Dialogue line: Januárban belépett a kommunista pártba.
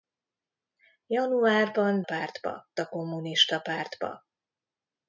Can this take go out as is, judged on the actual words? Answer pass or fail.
fail